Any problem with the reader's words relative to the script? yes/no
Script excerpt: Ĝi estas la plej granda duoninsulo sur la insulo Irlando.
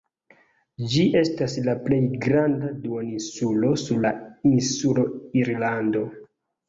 no